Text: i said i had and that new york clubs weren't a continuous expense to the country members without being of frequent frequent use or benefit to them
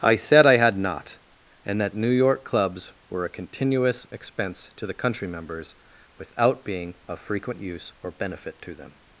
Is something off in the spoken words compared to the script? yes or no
yes